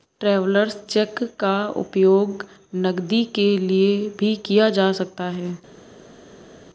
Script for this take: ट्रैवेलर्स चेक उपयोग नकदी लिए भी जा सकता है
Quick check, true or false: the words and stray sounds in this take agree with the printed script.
false